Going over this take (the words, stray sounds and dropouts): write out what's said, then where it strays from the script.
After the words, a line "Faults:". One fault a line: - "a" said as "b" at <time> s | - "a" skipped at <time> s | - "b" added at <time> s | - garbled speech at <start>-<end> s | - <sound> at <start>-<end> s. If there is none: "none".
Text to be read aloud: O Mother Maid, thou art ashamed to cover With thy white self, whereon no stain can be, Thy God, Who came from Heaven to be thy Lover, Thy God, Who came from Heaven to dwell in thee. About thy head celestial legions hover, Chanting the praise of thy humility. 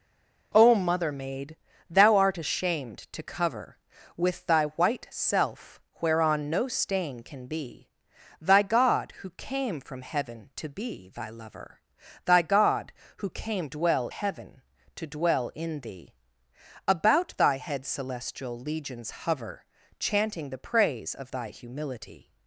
O Mother Maid, thou art ashamed to cover With thy white self, whereon no stain can be, Thy God, Who came from Heaven to be thy Lover, Thy God, Who came dwell Heaven to dwell in thee. About thy head celestial legions hover, Chanting the praise of thy humility.
Faults:
- "from" said as "dwell" at 13.6 s